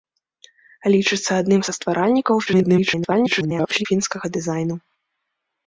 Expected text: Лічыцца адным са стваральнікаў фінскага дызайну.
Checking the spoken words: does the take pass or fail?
fail